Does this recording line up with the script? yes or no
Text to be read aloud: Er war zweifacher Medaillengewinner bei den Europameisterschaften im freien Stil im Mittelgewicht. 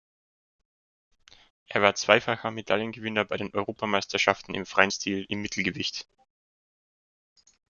yes